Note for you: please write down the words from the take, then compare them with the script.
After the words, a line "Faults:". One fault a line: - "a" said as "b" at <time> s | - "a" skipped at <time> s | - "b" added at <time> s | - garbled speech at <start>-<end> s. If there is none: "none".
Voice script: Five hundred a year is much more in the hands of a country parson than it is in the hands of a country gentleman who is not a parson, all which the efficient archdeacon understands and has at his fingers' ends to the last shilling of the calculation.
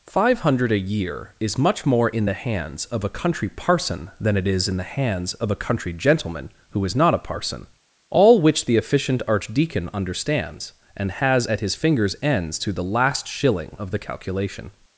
Five hundred a year is much more in the hands of a country parson than it is in the hands of a country gentleman who is not a parson, all which the efficient archdeacon understands and has at his fingers' ends to the last shilling of the calculation.
Faults:
none